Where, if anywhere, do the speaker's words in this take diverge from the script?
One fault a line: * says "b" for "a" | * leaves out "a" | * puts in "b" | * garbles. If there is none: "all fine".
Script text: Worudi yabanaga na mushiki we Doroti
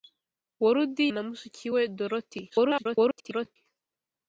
* leaves out "yabanaga"
* garbles